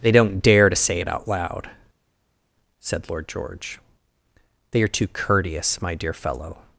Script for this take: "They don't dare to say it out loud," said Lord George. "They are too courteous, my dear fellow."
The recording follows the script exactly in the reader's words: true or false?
true